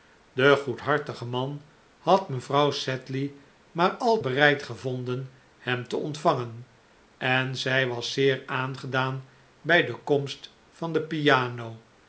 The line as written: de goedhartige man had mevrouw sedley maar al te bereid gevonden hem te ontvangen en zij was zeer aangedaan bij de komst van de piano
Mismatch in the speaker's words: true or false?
true